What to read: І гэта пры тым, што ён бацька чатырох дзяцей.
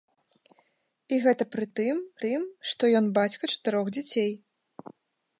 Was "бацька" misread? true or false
false